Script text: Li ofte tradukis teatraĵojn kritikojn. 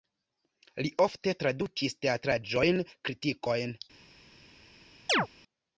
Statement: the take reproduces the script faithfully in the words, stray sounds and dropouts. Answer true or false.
false